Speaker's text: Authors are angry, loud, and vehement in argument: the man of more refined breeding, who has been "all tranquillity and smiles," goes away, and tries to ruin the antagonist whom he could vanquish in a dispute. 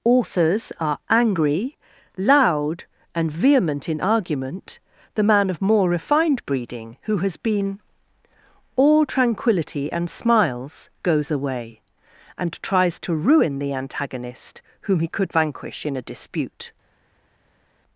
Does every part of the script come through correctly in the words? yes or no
yes